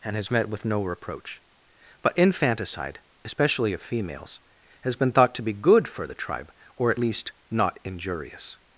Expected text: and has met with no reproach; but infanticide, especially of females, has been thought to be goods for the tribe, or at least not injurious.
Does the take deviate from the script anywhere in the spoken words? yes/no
yes